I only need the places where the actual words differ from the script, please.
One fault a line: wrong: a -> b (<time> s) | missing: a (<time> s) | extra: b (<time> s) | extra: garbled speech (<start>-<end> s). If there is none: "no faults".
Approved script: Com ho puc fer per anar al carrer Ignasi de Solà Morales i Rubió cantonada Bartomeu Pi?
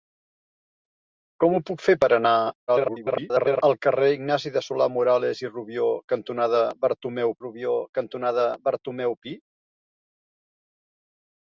extra: garbled speech (2.7-3.6 s)
extra: Rubió cantonada Bartomeu (7.4 s)